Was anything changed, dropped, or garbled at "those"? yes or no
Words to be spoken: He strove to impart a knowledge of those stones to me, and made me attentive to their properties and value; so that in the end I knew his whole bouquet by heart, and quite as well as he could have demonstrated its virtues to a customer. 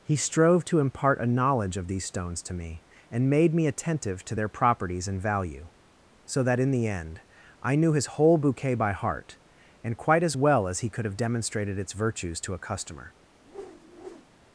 yes